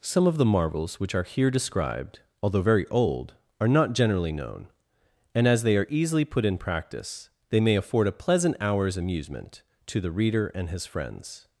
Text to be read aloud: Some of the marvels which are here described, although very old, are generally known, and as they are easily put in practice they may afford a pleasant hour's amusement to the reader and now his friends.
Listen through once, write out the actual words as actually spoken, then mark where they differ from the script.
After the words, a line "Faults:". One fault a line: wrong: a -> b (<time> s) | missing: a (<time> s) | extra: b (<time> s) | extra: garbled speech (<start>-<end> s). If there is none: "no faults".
Some of the marvels which are here described, although very old, are not generally known, and as they are easily put in practice they may afford a pleasant hour's amusement to the reader and his friends.
Faults:
extra: not (3.7 s)
missing: now (10.7 s)